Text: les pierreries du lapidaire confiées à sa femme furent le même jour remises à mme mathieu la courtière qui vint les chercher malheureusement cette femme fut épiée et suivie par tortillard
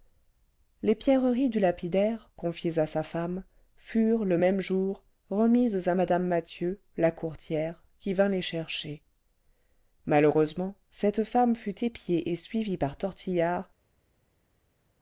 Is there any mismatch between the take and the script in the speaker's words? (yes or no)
no